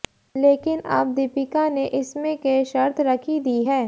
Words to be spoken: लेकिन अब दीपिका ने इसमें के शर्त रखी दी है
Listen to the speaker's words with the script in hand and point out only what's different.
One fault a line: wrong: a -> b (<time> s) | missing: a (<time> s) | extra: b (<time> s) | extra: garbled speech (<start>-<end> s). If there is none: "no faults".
no faults